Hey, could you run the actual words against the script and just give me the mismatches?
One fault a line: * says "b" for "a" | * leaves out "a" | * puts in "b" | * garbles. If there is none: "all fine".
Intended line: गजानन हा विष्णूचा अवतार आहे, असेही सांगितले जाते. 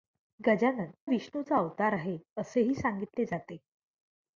* leaves out "हा"